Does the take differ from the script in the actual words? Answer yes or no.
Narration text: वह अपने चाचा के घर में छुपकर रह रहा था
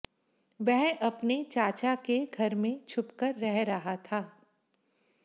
no